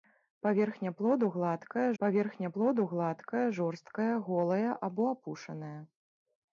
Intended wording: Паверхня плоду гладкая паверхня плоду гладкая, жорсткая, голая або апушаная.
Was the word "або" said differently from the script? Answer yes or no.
no